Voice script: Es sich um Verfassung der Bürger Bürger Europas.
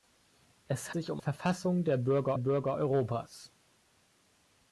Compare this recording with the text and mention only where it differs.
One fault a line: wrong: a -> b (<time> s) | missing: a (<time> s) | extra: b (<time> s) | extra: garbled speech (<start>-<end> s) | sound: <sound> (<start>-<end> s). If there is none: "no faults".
no faults